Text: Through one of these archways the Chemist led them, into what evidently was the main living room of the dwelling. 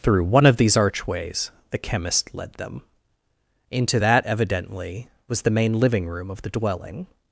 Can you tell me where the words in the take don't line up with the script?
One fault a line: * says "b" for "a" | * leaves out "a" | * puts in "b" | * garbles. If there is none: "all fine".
* says "that" for "what"